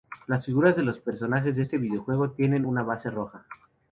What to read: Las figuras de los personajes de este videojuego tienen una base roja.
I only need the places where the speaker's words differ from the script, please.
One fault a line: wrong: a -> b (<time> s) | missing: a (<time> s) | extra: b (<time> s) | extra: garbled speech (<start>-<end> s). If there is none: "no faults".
no faults